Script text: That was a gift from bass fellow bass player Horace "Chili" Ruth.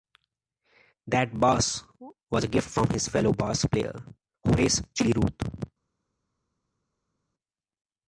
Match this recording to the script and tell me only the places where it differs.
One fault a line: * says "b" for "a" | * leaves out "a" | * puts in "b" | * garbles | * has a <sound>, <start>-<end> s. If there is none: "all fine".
* puts in "bass"
* says "his" for "bass"